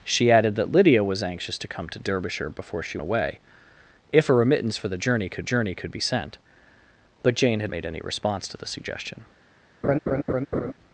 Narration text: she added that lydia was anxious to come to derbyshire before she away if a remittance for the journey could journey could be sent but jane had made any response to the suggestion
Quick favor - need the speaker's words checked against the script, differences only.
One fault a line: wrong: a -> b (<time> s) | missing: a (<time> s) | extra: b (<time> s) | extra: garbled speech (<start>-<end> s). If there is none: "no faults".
no faults